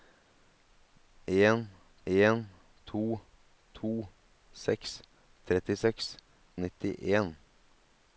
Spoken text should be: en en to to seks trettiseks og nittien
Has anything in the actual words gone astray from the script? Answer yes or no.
no